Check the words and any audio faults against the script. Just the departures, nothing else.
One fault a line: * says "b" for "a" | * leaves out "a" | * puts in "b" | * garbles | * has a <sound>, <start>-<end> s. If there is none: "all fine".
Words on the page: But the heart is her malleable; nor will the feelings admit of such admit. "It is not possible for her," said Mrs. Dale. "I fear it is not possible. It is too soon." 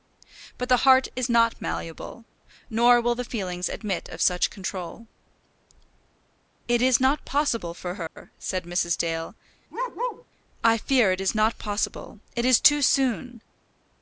* says "not" for "her"
* says "control" for "admit"
* has a dropout, 8.1-8.2 s
* has a bark, 9.7-10.3 s